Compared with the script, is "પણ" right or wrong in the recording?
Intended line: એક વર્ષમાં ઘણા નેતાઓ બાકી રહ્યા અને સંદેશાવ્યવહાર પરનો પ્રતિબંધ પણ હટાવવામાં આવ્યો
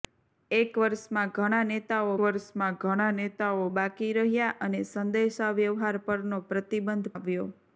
wrong